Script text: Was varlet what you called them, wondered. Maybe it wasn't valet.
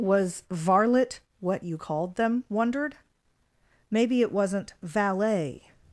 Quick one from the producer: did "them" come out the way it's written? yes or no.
yes